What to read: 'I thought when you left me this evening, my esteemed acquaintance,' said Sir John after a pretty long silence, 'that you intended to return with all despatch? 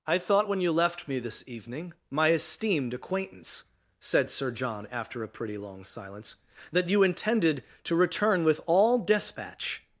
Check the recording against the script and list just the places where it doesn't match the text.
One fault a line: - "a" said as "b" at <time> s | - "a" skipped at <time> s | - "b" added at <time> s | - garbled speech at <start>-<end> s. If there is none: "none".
none